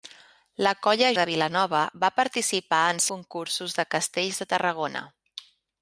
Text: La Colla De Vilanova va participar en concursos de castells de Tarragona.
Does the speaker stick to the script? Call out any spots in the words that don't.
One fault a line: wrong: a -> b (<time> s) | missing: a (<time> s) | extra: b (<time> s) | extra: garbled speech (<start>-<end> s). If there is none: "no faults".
no faults